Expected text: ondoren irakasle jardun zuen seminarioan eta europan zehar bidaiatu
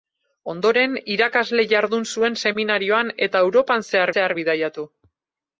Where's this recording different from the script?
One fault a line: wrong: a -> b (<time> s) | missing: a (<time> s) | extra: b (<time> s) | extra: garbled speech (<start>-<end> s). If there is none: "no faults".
extra: zehar (4.1 s)